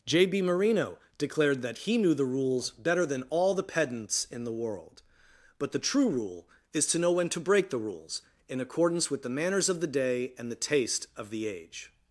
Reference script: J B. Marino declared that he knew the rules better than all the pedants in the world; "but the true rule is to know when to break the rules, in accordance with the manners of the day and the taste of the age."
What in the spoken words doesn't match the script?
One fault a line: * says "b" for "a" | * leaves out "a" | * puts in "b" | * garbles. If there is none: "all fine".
all fine